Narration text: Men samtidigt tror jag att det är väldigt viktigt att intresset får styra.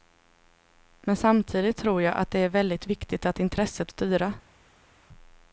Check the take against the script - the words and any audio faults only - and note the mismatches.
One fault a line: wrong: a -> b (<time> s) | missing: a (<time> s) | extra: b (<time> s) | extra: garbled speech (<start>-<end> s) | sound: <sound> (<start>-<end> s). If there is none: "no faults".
missing: får (3.9 s)